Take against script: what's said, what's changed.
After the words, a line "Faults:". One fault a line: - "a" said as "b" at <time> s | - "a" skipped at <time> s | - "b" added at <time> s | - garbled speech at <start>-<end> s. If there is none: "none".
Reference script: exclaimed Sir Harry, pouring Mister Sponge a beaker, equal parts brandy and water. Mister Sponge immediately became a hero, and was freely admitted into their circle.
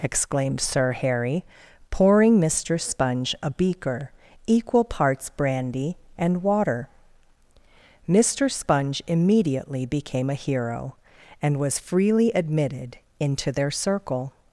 exclaimed Sir Harry, pouring Mister Sponge a beaker, equal parts brandy and water. Mister Sponge immediately became a hero, and was freely admitted into their circle.
Faults:
none